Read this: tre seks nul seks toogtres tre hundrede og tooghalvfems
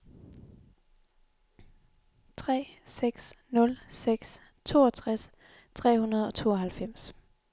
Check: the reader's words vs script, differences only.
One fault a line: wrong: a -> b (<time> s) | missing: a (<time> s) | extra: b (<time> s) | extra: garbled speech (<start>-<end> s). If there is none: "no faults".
no faults